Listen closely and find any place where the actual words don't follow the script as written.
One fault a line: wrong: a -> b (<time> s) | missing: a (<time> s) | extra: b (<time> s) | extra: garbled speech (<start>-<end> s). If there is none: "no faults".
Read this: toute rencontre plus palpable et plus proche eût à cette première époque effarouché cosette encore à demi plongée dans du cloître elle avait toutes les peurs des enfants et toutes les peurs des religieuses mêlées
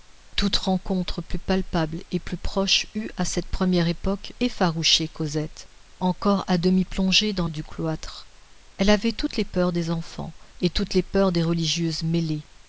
no faults